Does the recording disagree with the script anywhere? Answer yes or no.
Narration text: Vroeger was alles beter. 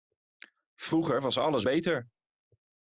no